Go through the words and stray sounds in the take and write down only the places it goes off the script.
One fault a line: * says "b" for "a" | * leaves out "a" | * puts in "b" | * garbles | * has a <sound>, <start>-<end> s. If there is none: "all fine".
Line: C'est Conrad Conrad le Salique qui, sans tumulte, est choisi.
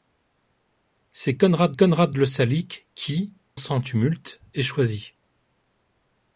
all fine